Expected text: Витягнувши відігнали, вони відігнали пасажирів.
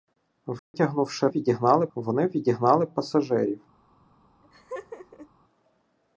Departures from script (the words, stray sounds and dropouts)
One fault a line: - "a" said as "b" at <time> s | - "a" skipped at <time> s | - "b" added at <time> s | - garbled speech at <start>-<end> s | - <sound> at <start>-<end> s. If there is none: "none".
- dropout at 0.6-0.7 s
- laugh at 4.4-5.3 s